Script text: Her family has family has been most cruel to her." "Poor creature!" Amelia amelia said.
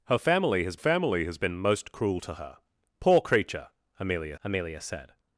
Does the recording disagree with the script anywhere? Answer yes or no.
no